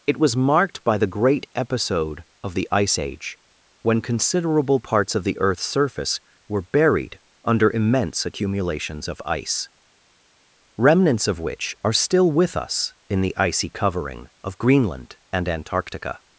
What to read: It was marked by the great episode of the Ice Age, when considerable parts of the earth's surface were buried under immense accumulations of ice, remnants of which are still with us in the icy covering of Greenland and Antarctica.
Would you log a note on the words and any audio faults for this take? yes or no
no